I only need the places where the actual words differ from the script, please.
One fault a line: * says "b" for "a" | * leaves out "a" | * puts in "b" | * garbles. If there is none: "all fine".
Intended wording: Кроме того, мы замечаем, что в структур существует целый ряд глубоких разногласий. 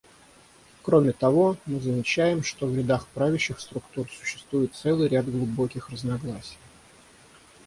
* puts in "рядах правящих"